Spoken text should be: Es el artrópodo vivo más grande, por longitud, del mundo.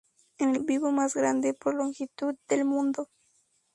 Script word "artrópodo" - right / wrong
wrong